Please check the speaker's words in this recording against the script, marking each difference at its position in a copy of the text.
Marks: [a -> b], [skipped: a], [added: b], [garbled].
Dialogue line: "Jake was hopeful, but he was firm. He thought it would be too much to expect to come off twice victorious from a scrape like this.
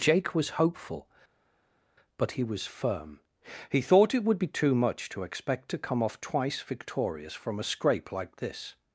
"Jake was hopeful, but he was firm. He thought it would be too much to expect to come off twice victorious from a scrape like this.